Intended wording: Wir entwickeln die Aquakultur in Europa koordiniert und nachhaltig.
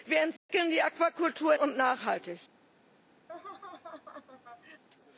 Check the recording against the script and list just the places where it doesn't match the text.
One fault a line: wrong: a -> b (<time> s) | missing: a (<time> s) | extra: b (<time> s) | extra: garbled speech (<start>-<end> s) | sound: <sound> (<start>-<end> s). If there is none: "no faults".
sound: dropout (0.4-0.5 s)
missing: in Europa koordiniert (1.5 s)
sound: laugh (3.3-4.8 s)